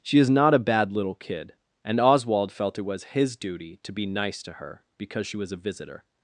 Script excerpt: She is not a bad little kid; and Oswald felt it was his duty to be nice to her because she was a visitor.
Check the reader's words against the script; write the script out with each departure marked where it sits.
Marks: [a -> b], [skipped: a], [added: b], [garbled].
She is not a bad little kid; and Oswald felt it was his duty to be nice to her because she was a visitor.